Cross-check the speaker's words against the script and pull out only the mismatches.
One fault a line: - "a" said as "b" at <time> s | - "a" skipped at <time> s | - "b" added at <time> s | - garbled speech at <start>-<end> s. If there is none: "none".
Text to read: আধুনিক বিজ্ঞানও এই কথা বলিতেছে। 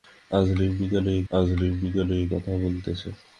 - "আধুনিক বিজ্ঞানও এই" added at 1.3 s